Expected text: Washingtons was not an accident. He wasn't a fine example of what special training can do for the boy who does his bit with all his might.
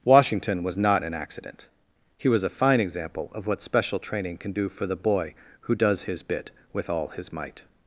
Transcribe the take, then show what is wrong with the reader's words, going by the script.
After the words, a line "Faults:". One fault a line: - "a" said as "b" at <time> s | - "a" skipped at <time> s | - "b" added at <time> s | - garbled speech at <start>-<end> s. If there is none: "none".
Washington was not an accident. He was a fine example of what special training can do for the boy who does his bit with all his might.
Faults:
- "Washingtons" said as "Washington" at 0.0 s
- "wasn't" said as "was" at 2.3 s